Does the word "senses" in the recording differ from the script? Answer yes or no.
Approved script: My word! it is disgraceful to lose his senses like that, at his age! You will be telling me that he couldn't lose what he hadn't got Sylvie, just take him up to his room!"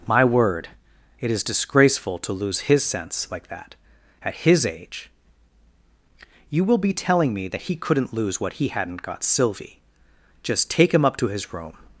yes